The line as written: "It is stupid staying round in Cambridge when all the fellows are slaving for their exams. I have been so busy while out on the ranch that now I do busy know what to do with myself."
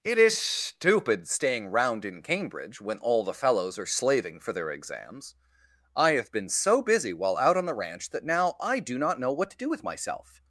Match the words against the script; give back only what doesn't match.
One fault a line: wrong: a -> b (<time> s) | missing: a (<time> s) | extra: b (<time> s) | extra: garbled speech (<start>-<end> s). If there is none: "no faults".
wrong: busy -> not (9.0 s)